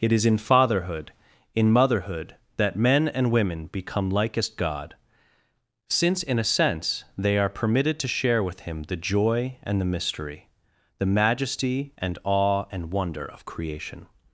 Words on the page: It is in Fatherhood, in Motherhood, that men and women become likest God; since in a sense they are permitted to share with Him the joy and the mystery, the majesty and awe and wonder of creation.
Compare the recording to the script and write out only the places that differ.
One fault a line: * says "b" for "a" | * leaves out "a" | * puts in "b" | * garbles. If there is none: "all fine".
all fine